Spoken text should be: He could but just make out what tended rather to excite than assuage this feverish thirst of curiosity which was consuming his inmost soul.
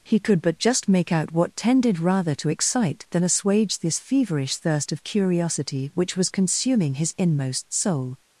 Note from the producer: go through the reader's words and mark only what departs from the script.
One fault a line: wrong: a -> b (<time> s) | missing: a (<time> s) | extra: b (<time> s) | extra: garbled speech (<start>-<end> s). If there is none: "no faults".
no faults